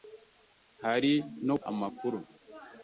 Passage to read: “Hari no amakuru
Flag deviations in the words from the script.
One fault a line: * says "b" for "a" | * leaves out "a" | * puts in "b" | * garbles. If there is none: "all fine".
all fine